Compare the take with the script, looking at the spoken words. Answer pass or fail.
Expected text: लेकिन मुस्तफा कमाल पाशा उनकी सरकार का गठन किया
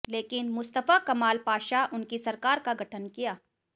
pass